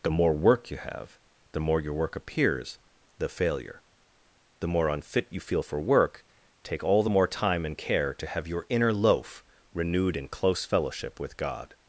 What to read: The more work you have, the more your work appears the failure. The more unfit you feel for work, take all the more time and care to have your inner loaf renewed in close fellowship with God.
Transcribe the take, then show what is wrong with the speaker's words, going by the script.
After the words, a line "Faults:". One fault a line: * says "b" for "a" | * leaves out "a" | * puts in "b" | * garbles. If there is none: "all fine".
The more work you have, the more your work appears the failure. The more unfit you feel for work, take all the more time and care to have your inner loaf renewed in close fellowship with God.
Faults:
all fine